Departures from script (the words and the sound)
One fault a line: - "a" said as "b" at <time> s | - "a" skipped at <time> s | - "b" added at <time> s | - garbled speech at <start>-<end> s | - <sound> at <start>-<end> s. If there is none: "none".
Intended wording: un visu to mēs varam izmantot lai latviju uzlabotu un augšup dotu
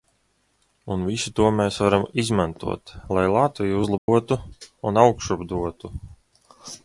- dropout at 4.0-4.1 s